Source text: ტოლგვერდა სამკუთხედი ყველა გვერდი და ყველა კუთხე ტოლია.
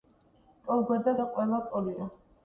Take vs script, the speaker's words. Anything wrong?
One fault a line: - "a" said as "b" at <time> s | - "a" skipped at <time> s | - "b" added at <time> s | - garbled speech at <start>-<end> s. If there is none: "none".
- "სამკუთხედი ყველა გვერდი" skipped at 1.1 s
- "კუთხე" skipped at 1.6 s